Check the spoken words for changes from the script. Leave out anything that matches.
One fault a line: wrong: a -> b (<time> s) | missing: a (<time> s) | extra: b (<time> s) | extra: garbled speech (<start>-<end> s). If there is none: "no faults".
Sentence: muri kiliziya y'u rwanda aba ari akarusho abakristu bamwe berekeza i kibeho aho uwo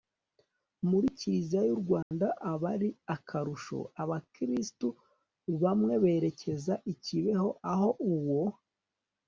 no faults